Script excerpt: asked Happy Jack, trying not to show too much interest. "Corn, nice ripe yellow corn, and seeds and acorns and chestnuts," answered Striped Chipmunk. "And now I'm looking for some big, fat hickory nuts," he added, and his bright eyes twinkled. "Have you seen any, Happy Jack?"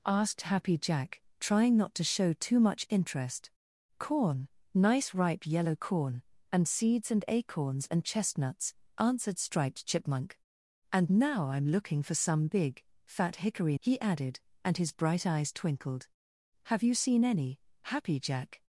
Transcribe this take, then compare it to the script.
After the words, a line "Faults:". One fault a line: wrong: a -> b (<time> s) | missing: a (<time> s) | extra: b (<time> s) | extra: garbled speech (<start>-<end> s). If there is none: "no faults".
asked Happy Jack, trying not to show too much interest. "Corn, nice ripe yellow corn, and seeds and acorns and chestnuts," answered Striped Chipmunk. "And now I'm looking for some big, fat hickory," he added, and his bright eyes twinkled. "Have you seen any, Happy Jack?"
Faults:
missing: nuts (13.8 s)